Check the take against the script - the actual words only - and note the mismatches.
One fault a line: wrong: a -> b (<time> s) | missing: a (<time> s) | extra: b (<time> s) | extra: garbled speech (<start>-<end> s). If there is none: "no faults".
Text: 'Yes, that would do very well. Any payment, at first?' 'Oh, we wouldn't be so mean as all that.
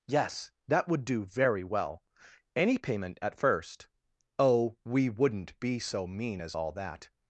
no faults